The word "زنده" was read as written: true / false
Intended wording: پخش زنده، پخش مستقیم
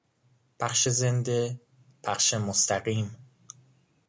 true